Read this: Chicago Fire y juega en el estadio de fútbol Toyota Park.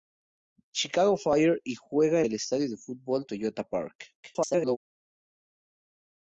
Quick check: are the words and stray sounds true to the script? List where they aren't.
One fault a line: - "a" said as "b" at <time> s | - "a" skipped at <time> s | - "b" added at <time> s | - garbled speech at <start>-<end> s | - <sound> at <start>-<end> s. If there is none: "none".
- "en" skipped at 2.2 s
- garbled speech at 4.2-4.8 s